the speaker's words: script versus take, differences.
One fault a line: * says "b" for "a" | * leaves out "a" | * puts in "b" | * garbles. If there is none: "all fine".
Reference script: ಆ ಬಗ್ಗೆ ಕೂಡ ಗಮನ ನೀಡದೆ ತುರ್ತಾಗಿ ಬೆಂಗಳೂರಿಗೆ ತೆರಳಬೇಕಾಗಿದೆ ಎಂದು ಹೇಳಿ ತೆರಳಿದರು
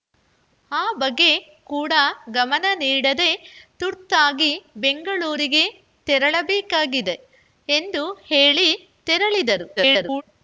* garbles